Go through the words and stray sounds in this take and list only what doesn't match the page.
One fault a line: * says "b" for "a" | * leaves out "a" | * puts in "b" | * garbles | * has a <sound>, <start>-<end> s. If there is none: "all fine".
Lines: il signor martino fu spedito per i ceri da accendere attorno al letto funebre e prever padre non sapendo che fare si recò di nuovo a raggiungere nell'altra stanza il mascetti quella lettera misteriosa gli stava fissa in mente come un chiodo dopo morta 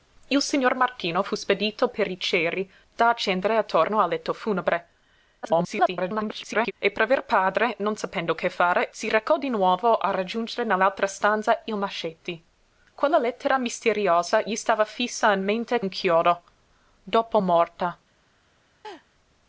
* garbles
* leaves out "come"
* has a laugh, 18.8-19.1 s